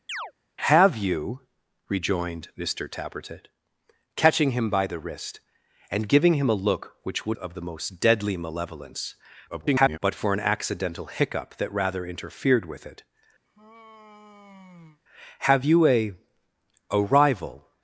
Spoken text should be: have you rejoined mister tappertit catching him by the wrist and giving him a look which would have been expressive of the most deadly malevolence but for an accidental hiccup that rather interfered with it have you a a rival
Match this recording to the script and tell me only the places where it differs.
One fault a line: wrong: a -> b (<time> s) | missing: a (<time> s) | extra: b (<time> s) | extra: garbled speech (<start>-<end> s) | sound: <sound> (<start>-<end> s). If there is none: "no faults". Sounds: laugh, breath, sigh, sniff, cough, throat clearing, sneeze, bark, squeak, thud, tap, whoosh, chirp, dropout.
sound: chirp (0.1-0.3 s)
missing: have been expressive (7.4 s)
extra: garbled speech (9.5-10.0 s)
sound: sigh (13.4-15.0 s)